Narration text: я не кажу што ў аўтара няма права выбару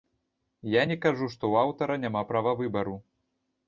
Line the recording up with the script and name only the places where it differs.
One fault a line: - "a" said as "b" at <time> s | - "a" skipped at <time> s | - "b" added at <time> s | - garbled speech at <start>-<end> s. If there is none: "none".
none